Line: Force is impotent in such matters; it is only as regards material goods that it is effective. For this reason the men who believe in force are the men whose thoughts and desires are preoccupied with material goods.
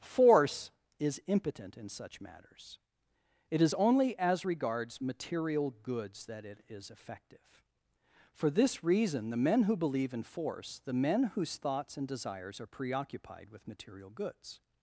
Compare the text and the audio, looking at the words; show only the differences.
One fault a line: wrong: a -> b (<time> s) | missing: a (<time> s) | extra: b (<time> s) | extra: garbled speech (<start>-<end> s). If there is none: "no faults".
missing: are (10.8 s)